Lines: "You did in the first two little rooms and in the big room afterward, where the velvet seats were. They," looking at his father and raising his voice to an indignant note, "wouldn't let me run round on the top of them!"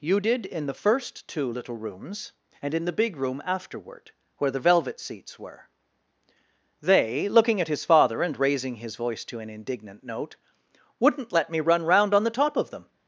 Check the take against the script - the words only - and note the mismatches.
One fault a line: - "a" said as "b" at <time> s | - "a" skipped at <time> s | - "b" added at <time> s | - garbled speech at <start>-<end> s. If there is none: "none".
none